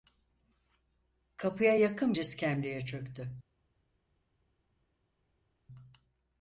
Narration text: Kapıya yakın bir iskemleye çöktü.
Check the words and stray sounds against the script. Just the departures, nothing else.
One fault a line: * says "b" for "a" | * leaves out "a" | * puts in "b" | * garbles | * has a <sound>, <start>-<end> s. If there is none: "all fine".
* leaves out "bir"